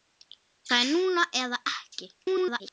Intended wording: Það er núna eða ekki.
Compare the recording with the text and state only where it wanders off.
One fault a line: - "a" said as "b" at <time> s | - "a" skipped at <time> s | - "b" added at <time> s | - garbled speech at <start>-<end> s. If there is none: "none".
- garbled speech at 2.2-2.7 s